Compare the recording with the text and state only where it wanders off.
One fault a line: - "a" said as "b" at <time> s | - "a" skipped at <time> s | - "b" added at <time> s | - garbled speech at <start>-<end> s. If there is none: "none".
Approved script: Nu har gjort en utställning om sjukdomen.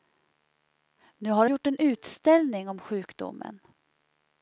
none